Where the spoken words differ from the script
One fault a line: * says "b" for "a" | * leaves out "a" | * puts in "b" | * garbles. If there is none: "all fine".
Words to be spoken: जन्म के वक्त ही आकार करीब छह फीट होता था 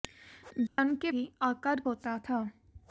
* leaves out "वक्त"
* leaves out "करीब छह फीट"